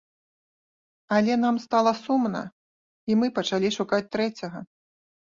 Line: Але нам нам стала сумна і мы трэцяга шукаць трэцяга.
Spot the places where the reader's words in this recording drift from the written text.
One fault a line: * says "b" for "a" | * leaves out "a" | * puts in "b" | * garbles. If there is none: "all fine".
* leaves out "нам"
* says "пачалі" for "трэцяга"